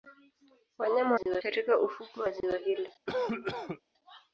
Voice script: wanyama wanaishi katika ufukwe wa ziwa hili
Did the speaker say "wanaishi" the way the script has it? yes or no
no